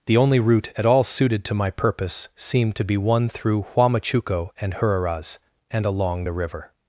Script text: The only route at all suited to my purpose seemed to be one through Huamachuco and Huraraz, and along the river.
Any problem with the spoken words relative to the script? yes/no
no